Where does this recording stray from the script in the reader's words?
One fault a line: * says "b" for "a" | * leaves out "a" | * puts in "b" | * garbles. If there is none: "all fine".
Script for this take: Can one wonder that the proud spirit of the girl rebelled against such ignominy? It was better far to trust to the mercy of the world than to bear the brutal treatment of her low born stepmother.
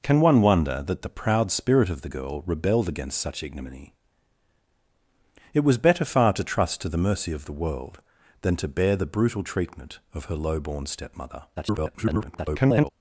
* garbles